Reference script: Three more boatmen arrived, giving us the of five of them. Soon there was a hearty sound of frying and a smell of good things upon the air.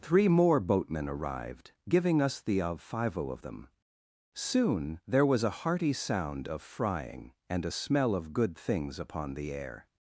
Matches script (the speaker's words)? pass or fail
pass